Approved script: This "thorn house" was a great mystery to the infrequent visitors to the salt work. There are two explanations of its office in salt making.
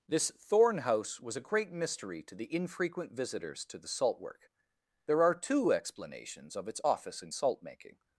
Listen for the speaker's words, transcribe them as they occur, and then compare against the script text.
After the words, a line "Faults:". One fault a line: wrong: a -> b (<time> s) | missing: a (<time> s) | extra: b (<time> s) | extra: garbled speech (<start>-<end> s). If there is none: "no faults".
This "thorn house" was a great mystery to the infrequent visitors to the salt work. There are two explanations of its office in salt making.
Faults:
no faults